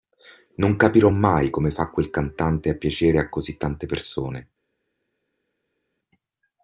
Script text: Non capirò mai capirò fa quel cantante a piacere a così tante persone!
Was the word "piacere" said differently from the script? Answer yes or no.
no